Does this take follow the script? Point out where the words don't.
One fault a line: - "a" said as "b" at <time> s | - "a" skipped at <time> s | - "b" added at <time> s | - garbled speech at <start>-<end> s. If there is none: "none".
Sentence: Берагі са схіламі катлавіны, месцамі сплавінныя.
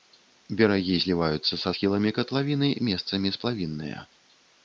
- "зліваюцца" added at 1.0 s